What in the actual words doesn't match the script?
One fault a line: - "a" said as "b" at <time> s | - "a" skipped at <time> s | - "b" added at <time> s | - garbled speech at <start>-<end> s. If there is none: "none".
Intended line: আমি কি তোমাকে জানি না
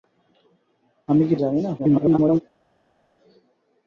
- "তোমাকে" skipped at 1.4 s
- garbled speech at 1.8-2.4 s